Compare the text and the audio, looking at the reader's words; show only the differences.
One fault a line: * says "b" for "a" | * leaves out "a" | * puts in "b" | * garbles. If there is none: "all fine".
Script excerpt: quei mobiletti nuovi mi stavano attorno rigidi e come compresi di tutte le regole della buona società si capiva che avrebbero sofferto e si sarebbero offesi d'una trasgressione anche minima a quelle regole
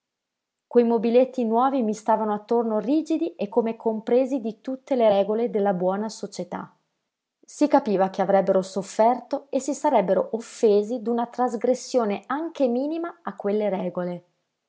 all fine